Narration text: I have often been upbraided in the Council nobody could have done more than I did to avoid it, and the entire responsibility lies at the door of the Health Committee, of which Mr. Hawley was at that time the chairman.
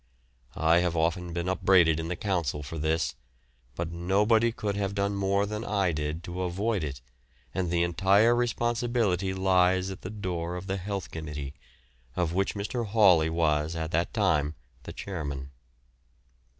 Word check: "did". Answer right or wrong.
right